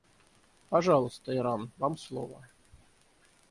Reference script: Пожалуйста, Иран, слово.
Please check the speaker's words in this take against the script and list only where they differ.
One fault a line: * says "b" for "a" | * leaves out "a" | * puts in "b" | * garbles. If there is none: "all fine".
* puts in "вам"